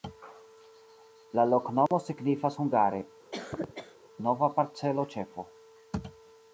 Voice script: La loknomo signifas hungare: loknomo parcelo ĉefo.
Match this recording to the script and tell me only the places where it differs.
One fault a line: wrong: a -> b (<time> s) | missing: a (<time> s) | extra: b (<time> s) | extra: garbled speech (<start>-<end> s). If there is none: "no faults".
wrong: loknomo -> nova (4.3 s)